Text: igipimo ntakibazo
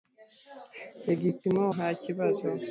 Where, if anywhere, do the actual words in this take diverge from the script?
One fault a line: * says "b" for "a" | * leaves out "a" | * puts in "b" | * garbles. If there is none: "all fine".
all fine